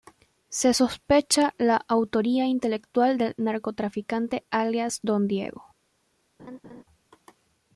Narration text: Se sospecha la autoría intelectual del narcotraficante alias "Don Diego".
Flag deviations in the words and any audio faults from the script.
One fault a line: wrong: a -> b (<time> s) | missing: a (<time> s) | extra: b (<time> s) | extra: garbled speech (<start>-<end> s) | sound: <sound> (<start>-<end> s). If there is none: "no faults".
sound: laugh (6.4-6.8 s)